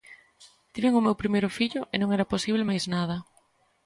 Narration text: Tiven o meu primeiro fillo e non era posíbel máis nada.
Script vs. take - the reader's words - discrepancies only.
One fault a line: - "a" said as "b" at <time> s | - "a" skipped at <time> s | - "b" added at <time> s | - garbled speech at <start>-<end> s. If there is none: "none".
none